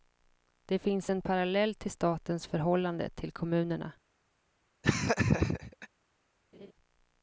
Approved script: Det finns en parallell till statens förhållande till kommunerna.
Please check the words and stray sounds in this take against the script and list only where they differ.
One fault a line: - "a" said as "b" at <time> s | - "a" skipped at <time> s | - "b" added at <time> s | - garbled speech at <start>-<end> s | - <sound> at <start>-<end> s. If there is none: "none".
- laugh at 4.8-5.9 s
- laugh at 6.5-6.7 s